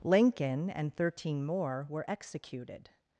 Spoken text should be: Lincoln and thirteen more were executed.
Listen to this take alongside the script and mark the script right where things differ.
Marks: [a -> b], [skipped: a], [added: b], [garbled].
Lincoln and thirteen more were executed.